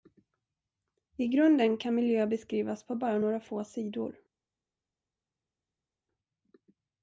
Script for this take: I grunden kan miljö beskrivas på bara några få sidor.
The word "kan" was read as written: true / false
true